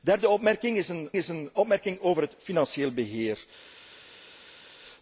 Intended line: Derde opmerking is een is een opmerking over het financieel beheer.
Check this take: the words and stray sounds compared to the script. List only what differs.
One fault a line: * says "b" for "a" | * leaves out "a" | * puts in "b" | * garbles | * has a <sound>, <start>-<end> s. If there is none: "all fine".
all fine